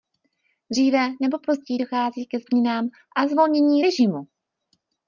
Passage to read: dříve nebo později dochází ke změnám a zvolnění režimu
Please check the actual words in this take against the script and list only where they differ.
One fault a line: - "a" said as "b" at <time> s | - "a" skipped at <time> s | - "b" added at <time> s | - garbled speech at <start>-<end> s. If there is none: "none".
none